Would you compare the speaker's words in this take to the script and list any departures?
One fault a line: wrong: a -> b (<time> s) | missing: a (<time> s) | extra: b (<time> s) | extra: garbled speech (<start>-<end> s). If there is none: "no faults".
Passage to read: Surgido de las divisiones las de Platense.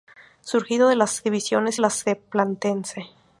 no faults